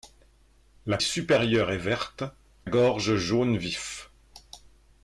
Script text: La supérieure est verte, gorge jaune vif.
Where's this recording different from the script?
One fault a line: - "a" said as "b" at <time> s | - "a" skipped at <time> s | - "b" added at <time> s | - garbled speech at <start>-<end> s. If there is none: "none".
none